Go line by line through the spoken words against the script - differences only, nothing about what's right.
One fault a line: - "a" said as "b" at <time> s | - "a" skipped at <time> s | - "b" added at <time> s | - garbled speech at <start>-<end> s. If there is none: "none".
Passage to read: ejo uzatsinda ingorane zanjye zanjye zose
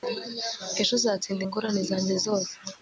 - "zanjye" skipped at 2.1 s